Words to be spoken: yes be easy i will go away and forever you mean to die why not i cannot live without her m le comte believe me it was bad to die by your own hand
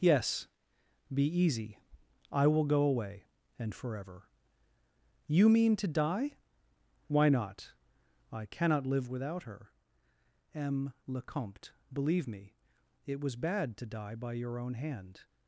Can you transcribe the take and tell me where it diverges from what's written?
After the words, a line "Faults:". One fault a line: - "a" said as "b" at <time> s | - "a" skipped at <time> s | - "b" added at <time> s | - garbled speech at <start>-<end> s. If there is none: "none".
yes be easy i will go away and forever you mean to die why not i cannot live without her m le comte believe me it was bad to die by your own hand
Faults:
none